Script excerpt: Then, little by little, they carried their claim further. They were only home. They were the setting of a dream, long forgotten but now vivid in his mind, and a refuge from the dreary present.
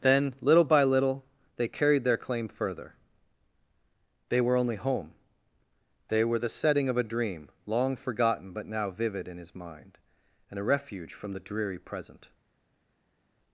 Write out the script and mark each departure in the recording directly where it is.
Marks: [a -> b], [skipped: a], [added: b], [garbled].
Then, little by little, they carried their claim further. They were only home. They were the setting of a dream, long forgotten but now vivid in his mind, and a refuge from the dreary present.